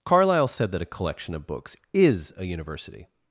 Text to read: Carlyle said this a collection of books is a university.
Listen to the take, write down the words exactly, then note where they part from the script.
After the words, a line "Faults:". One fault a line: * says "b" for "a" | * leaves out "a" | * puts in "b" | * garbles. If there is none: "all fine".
Carlyle said that a collection of books is a university.
Faults:
* says "that" for "this"